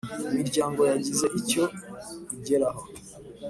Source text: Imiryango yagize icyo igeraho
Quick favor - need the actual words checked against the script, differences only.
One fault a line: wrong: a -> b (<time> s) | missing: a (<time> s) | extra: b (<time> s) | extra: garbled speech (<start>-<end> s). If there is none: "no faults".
no faults